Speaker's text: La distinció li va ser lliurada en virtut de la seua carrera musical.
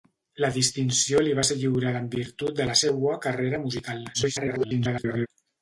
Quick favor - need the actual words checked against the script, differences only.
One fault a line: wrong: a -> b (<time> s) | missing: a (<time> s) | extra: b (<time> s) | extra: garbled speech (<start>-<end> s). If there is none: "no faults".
extra: garbled speech (4.1-5.3 s)